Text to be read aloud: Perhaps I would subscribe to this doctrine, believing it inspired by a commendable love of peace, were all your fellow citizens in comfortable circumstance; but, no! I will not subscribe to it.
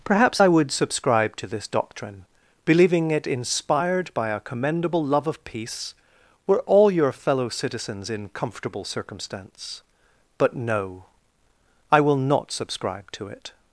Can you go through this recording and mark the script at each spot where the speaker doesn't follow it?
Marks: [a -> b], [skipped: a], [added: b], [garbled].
Perhaps I would subscribe to this doctrine, believing it inspired by a commendable love of peace, were all your fellow citizens in comfortable circumstance; but, no! I will not subscribe to it.